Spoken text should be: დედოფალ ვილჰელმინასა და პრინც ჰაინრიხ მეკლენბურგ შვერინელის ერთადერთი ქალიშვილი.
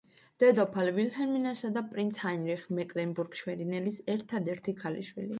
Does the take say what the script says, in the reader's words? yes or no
yes